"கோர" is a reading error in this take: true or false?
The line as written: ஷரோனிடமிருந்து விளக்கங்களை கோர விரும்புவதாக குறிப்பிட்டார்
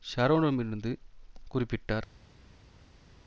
true